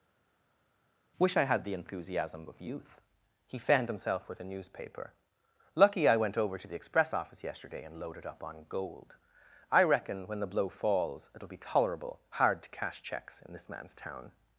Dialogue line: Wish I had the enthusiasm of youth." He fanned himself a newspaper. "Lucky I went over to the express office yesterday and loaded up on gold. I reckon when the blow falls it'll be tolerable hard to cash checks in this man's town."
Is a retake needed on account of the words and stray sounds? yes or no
yes